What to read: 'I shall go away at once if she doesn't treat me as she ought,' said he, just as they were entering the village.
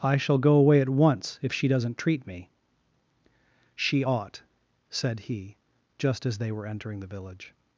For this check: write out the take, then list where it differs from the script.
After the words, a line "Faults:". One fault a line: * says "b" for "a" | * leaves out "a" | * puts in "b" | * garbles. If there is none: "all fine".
'I shall go away at once if she doesn't treat me she ought,' said he, just as they were entering the village.
Faults:
* leaves out "as"